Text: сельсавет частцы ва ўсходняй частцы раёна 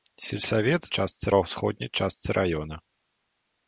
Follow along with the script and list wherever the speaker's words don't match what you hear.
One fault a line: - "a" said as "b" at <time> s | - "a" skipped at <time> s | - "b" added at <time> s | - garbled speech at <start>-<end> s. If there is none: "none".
none